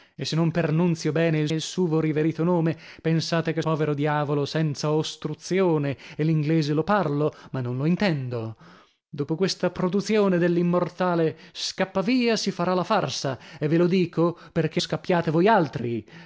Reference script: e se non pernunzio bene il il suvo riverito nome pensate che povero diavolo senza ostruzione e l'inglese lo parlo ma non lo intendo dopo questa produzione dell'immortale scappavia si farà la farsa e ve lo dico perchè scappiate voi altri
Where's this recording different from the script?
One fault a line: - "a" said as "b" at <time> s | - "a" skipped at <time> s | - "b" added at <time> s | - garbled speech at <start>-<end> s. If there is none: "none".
none